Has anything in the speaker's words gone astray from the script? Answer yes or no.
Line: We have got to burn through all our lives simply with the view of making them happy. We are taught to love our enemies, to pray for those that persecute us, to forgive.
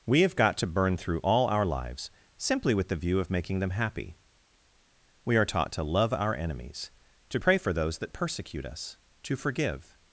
no